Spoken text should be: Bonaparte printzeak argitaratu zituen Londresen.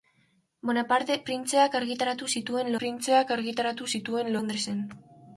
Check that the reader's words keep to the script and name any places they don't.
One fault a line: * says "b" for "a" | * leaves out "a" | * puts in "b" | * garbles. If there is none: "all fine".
* puts in "printzeak argitaratu zituen"